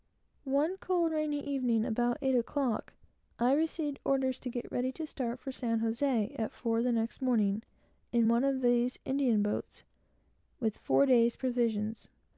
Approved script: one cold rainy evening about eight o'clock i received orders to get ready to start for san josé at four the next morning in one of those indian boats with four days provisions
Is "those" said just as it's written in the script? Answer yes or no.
no